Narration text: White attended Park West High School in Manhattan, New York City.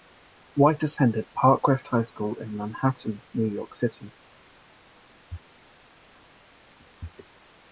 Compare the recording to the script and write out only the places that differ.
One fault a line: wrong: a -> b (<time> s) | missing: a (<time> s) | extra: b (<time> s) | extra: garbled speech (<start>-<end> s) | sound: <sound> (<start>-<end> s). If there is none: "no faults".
no faults